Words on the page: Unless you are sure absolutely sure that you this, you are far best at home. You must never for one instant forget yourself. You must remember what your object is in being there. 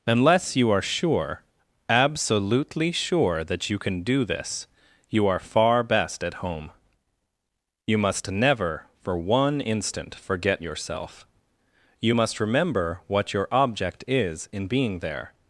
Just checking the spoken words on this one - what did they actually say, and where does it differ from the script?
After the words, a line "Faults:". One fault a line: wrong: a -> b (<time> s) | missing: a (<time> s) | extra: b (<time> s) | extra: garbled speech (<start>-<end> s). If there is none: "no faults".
Unless you are sure absolutely sure that you can do this, you are far best at home. You must never for one instant forget yourself. You must remember what your object is in being there.
Faults:
extra: can do (3.8 s)